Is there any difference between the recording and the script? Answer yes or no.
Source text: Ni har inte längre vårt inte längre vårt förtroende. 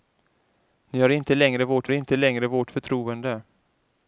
no